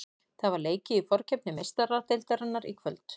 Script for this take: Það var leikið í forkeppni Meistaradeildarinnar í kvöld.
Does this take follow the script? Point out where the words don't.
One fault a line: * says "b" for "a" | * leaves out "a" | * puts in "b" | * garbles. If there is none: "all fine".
all fine